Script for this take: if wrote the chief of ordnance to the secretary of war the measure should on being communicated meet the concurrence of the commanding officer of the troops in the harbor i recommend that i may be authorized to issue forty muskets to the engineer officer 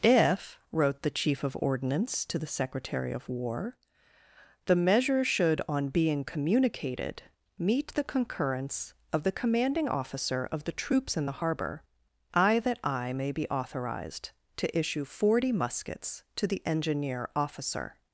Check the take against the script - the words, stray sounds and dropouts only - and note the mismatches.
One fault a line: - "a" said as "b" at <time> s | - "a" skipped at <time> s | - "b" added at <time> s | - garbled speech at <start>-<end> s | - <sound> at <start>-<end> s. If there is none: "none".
- "recommend" skipped at 12.6 s